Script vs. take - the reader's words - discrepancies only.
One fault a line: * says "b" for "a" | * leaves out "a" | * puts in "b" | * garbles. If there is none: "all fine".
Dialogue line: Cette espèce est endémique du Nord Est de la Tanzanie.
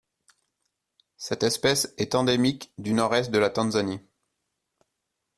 all fine